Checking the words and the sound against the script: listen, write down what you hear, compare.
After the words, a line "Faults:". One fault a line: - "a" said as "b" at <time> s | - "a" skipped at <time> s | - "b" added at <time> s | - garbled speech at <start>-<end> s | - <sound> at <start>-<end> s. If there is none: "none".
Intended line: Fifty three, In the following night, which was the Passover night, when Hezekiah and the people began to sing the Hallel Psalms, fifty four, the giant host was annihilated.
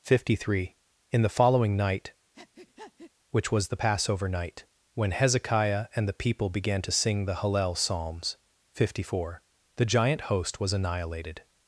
Fifty three, In the following night, which was the Passover night, when Hezekiah and the people began to sing the Hallel Psalms, fifty four, the giant host was annihilated.
Faults:
- breath at 2.3-3.1 s